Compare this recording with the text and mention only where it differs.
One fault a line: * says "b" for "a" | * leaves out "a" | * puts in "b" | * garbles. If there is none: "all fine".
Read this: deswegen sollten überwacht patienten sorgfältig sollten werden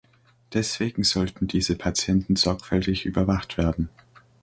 * says "diese" for "überwacht"
* says "überwacht" for "sollten"